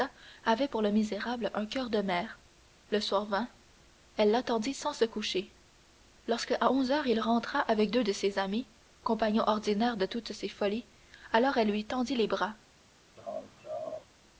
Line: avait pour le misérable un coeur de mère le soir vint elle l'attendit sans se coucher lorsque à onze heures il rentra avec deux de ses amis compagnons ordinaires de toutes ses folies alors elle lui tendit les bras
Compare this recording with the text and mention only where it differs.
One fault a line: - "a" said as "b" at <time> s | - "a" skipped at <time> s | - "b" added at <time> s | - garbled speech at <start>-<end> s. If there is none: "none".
none